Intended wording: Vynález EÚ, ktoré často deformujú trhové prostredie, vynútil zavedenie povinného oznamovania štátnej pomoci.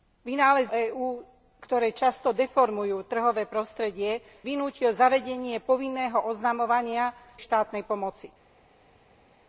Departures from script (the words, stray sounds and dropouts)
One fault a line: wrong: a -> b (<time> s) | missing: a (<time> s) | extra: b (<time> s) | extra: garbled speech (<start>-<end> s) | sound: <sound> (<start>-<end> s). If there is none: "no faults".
no faults